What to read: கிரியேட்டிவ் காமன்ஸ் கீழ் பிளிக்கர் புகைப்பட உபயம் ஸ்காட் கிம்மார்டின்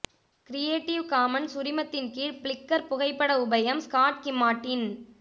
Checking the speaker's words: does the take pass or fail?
fail